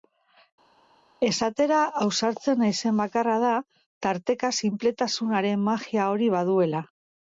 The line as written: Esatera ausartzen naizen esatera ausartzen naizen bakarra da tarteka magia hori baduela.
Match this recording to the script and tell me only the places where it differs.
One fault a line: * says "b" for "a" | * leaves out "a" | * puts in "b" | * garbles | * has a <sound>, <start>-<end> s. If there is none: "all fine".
* leaves out "esatera ausartzen naizen"
* puts in "sinpletasunaren"